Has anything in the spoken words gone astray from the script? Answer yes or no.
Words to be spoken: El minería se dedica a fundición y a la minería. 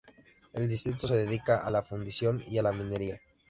yes